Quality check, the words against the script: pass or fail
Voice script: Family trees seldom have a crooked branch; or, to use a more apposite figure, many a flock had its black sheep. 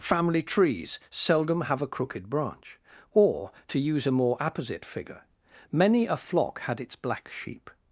pass